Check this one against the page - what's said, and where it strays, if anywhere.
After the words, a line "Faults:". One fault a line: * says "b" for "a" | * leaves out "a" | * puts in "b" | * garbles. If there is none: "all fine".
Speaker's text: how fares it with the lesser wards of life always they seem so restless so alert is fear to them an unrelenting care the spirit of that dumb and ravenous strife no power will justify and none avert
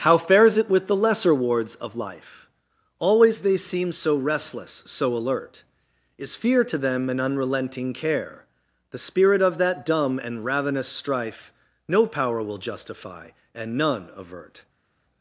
how fares it with the lesser wards of life always they seem so restless so alert is fear to them an unrelenting care the spirit of that dumb and ravenous strife no power will justify and none avert
Faults:
all fine